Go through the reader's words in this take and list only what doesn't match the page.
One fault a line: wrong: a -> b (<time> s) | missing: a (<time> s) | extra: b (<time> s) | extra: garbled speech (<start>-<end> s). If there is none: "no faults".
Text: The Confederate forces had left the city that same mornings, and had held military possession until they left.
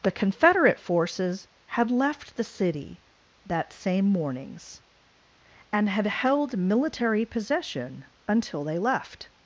no faults